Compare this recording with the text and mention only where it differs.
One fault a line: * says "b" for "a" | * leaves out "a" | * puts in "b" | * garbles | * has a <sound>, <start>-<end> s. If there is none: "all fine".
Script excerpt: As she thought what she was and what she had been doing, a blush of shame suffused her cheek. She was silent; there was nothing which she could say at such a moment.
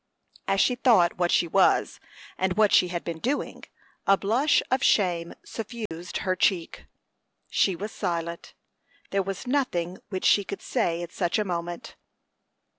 * has a dropout, 5.9-5.9 s